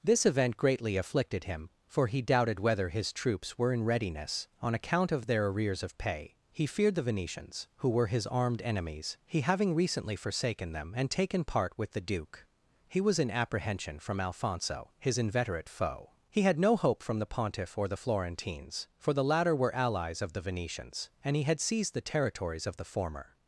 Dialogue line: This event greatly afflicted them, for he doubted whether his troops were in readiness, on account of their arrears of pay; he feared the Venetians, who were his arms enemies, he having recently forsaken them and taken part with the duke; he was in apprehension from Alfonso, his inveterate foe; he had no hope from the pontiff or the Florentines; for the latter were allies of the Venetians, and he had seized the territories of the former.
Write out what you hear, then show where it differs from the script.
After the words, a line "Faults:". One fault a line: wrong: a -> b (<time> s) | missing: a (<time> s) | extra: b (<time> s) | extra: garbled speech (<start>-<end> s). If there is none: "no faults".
This event greatly afflicted him, for he doubted whether his troops were in readiness, on account of their arrears of pay; he feared the Venetians, who were his armed enemies, he having recently forsaken them and taken part with the duke; he was in apprehension from Alfonso, his inveterate foe; he had no hope from the pontiff or the Florentines; for the latter were allies of the Venetians, and he had seized the territories of the former.
Faults:
wrong: them -> him (1.4 s)
wrong: arms -> armed (8.2 s)